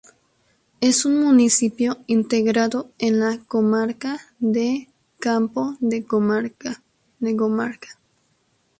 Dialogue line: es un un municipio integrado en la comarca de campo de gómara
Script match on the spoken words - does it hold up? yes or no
no